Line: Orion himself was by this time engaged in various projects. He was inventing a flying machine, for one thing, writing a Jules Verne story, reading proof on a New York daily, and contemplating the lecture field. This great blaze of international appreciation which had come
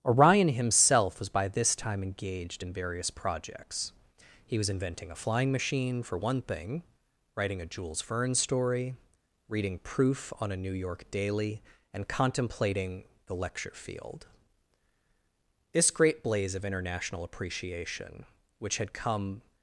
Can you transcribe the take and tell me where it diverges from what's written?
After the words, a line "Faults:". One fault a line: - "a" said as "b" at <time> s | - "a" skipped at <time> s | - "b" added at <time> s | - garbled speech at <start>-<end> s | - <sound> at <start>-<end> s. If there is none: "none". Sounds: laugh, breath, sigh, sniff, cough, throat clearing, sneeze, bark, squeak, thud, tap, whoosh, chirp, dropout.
Orion himself was by this time engaged in various projects. He was inventing a flying machine, for one thing, writing a Jules Verne story, reading proof on a New York daily, and contemplating the lecture field. This great blaze of international appreciation which had come
Faults:
none